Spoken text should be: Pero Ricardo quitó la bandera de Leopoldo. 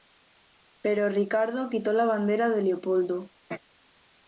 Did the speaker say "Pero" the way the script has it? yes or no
yes